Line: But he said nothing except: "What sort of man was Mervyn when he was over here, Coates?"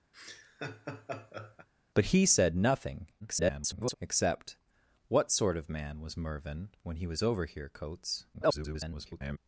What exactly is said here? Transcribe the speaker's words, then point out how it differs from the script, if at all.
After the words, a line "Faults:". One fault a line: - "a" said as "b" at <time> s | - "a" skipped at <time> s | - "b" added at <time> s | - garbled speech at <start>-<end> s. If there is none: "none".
But he said nothing [garbled] except: "What sort of man was Mervyn when he was over here, Coates?" [garbled]
Faults:
- garbled speech at 3.2-3.9 s
- garbled speech at 8.3-9.4 s